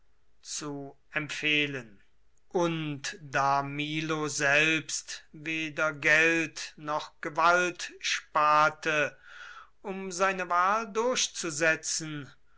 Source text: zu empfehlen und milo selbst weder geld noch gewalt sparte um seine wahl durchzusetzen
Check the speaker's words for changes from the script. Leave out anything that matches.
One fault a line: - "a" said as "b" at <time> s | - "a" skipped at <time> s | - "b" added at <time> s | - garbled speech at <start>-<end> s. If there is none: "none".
- "da" added at 3.2 s